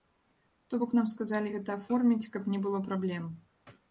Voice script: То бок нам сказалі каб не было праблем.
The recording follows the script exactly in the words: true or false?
false